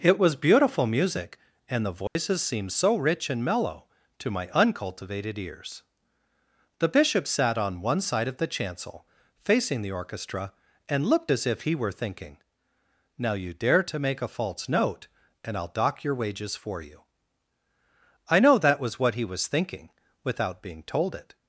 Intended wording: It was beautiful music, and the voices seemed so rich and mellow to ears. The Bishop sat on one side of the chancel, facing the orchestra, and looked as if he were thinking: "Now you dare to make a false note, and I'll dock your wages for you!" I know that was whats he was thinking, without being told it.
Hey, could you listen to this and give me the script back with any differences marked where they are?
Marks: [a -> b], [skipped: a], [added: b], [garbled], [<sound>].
It was beautiful music, and the voices [dropout] seemed so rich and mellow to [added: my uncultivated] ears. The Bishop sat on one side of the chancel, facing the orchestra, and looked as if he were thinking: "Now you dare to make a false note, and I'll dock your wages for you!" I know that was [whats -> what] he was thinking, without being told it.